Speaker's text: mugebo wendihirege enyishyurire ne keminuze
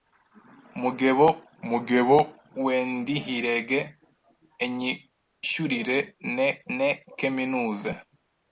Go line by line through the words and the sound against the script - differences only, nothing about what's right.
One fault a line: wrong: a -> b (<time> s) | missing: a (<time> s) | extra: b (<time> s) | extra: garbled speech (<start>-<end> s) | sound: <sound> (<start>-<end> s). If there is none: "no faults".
extra: mugebo (1.7 s)
extra: ne (6.8 s)